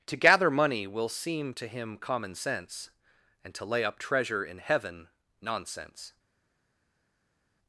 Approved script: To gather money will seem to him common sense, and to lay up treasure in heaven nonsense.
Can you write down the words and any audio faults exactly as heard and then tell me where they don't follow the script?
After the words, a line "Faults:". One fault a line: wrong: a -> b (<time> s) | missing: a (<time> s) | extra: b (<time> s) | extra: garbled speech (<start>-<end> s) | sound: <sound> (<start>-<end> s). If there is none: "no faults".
To gather money will seem to him common sense, and to lay up treasure in heaven nonsense.
Faults:
no faults